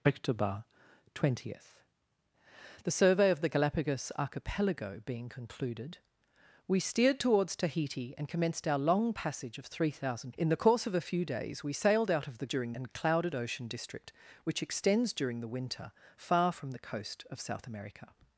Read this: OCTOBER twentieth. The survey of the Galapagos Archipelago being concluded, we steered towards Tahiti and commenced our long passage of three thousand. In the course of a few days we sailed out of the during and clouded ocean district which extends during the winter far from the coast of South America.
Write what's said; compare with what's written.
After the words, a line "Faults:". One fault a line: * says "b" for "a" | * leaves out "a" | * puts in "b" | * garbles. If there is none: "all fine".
OCTOBER twentieth. The survey of the Galapagos Archipelago being concluded, we steered towards Tahiti and commenced our long passage of three thousand. In the course of a few days we sailed out of the during and clouded ocean district which extends during the winter far from the coast of South America.
Faults:
all fine